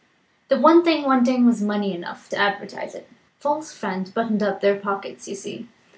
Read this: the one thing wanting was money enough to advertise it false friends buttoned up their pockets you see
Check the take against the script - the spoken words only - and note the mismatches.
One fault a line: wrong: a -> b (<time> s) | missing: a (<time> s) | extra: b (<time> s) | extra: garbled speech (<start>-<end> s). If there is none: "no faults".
no faults